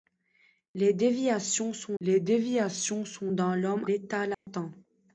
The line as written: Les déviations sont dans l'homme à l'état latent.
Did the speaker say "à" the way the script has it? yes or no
no